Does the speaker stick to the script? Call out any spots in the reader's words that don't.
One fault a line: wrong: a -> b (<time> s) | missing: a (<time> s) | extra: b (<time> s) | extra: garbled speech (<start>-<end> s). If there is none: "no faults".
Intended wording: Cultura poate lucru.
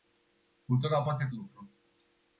no faults